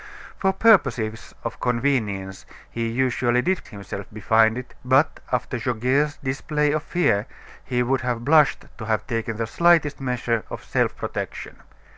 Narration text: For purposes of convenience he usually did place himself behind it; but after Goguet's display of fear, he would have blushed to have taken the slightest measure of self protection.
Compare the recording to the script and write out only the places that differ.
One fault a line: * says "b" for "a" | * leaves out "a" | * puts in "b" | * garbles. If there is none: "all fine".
* leaves out "place"